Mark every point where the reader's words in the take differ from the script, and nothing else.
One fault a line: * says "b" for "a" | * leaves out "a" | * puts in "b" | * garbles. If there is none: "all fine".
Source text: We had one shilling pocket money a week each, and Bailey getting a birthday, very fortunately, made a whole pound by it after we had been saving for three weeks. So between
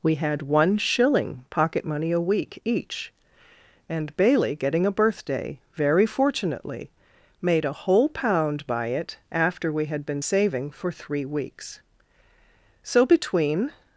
all fine